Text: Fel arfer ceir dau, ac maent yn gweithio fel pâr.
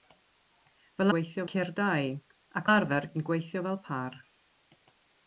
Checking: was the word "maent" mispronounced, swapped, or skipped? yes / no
yes